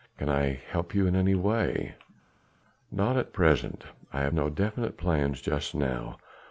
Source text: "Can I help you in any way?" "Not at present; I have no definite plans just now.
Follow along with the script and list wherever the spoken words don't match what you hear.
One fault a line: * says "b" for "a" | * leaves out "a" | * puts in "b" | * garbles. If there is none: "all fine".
all fine